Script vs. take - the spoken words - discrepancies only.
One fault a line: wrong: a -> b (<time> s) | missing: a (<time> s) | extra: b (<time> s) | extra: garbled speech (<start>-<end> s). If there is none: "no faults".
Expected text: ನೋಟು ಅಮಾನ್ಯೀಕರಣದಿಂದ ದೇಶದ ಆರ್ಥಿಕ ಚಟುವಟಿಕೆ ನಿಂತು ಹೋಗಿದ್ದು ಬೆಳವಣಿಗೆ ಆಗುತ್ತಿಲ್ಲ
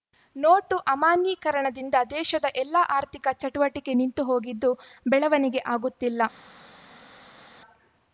extra: ಎಲ್ಲ (2.6 s)